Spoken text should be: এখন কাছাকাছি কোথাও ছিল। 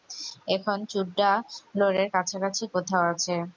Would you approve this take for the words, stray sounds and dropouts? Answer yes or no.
no